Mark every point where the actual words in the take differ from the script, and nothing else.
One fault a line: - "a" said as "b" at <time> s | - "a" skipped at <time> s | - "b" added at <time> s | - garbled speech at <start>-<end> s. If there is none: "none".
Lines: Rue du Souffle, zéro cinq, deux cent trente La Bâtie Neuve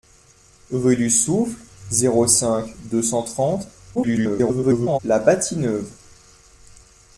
- garbled speech at 3.9-5.0 s